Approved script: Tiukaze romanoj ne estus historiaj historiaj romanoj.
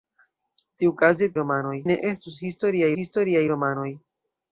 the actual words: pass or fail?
pass